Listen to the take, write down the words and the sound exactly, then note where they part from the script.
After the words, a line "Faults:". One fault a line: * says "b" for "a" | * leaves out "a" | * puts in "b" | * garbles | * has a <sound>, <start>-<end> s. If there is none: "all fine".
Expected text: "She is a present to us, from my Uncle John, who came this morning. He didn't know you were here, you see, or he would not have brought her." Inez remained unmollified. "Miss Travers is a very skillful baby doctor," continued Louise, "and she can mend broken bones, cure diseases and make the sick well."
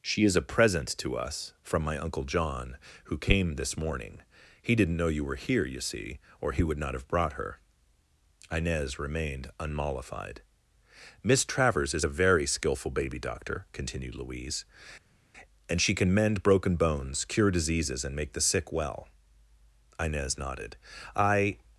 "She is a present to us, from my Uncle John, who came this morning. He didn't know you were here, you see, or he would not have brought her." Inez remained unmollified. "Miss Travers is a very skillful baby doctor," continued Louise, "and she can mend broken bones, cure diseases and make the sick well." Inez nodded. "I
Faults:
* puts in "Inez nodded I"